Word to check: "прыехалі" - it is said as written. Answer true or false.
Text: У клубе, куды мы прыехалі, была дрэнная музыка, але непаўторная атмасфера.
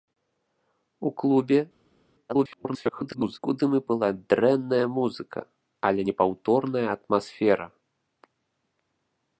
false